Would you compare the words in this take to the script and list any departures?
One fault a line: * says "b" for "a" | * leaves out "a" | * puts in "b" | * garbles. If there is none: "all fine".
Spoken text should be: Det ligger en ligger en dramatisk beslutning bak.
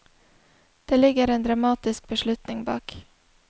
* leaves out "ligger en"